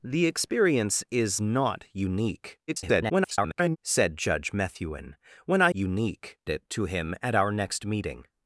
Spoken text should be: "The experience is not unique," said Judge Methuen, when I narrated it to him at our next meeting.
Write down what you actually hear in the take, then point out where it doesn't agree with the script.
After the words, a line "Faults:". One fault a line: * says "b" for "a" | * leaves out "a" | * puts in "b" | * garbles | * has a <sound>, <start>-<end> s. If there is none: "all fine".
"The experience is not unique," [garbled] said Judge Methuen, when I unique it to him at our next meeting.
Faults:
* garbles
* says "unique" for "narrated"